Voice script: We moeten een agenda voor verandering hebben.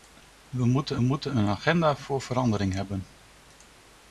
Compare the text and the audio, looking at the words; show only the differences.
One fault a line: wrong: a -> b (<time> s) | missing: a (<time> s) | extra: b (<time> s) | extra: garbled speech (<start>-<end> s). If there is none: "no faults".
extra: moeten (1.0 s)